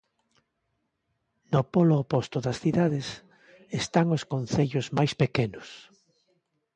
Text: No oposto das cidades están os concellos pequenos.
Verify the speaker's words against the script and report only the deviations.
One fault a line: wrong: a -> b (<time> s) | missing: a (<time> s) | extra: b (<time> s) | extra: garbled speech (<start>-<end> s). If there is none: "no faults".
extra: polo (1.7 s)
extra: máis (5.0 s)